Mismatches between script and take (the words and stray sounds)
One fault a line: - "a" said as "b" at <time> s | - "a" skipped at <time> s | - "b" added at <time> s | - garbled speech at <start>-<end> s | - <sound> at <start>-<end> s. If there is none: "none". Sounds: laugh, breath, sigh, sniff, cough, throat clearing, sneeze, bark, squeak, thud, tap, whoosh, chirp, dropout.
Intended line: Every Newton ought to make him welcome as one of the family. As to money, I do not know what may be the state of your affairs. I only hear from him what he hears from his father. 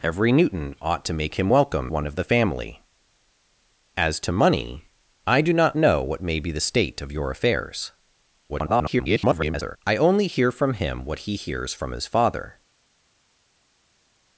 - "as" skipped at 1.9 s
- garbled speech at 8.5-9.8 s